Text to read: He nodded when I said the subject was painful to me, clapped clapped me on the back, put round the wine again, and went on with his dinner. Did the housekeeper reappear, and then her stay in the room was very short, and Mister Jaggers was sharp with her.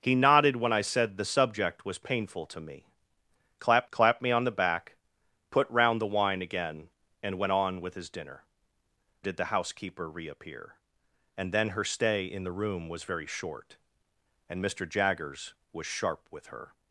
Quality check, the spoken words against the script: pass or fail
pass